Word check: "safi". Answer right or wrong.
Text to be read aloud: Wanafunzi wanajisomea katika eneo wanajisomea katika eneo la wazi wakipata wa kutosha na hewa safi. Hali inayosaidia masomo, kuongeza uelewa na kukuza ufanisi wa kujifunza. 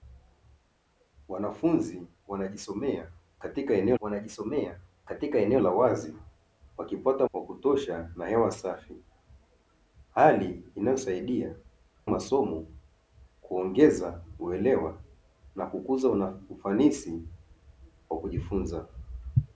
right